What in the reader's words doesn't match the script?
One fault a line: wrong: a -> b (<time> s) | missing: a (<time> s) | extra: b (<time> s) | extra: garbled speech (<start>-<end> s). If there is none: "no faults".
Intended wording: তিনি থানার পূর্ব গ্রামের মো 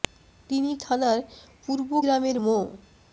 no faults